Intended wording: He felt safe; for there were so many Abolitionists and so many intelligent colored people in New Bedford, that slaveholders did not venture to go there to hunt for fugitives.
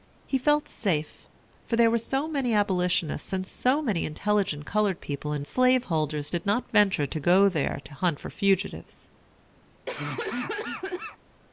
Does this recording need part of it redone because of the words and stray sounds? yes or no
yes